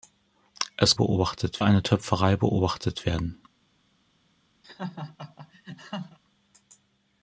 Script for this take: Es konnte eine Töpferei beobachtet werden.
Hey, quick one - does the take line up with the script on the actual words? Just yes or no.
no